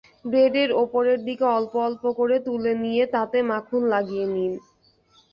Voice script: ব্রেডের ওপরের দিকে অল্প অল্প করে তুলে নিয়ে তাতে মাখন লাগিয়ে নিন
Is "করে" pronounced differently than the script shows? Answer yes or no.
no